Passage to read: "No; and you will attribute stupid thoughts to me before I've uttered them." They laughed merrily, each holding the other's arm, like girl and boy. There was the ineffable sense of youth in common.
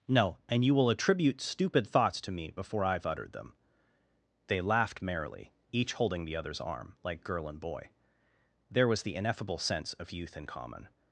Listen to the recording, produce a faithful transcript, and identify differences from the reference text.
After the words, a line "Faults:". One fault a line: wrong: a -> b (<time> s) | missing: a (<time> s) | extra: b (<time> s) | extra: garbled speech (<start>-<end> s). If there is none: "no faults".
"No; and you will attribute stupid thoughts to me before I've uttered them." They laughed merrily, each holding the other's arm, like girl and boy. There was the ineffable sense of youth in common.
Faults:
no faults